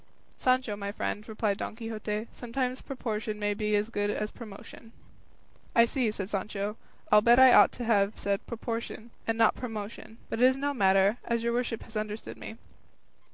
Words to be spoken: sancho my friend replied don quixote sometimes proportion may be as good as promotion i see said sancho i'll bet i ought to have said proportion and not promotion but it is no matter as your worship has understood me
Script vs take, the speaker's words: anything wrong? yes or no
no